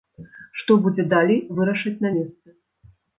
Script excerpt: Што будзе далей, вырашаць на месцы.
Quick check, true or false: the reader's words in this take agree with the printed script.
true